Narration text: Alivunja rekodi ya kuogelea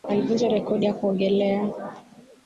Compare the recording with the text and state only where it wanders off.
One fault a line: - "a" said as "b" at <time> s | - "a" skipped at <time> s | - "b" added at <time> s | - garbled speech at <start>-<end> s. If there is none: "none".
none